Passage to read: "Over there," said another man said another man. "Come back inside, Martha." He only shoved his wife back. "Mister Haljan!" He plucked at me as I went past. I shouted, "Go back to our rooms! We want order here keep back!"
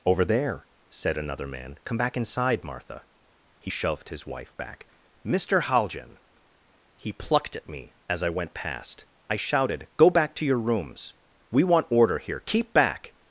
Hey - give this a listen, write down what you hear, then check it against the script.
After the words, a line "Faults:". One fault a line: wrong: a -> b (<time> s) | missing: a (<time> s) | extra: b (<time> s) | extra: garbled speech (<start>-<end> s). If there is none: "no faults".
"Over there," said another man. "Come back inside, Martha." He shoved his wife back. "Mister Haljan!" He plucked at me as I went past. I shouted, "Go back to your rooms! We want order here keep back!"
Faults:
missing: said another man (1.8 s)
missing: only (3.7 s)
wrong: our -> your (10.4 s)